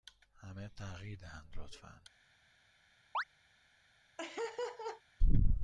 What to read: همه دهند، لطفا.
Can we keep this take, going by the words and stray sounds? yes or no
no